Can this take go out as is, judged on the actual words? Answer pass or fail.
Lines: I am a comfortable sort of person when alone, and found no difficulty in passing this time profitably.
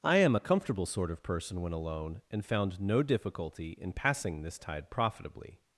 fail